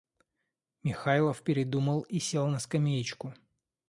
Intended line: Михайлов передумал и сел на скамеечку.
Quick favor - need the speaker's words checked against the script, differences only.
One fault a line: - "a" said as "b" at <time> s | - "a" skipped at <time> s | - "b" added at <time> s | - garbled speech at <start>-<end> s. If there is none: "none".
none